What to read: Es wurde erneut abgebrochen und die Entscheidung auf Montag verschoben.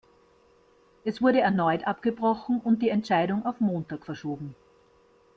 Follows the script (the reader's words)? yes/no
yes